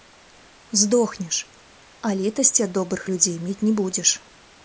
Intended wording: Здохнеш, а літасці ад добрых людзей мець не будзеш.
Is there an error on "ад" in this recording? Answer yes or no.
no